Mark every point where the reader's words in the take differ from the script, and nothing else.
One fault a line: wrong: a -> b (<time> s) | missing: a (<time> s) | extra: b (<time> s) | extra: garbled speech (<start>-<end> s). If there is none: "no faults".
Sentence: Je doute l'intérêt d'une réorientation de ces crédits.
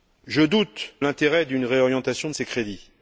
no faults